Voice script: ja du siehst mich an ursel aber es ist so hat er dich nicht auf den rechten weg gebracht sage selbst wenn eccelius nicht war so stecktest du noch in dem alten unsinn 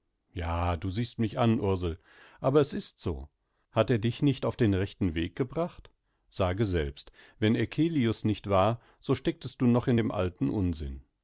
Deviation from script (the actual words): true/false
false